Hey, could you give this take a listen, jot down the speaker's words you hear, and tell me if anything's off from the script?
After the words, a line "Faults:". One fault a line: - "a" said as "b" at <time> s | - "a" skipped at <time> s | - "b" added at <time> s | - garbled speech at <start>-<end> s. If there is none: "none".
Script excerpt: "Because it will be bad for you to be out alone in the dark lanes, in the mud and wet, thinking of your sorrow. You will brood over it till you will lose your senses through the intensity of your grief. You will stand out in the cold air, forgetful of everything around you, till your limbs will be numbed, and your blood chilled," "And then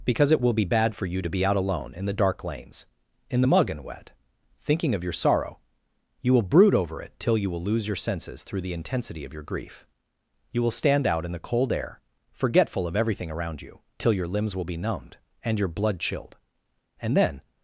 "Because it will be bad for you to be out alone in the dark lanes, in the mug and wet, thinking of your sorrow. You will brood over it till you will lose your senses through the intensity of your grief. You will stand out in the cold air, forgetful of everything around you, till your limbs will be numbed, and your blood chilled," "And then
Faults:
- "mud" said as "mug" at 3.5 s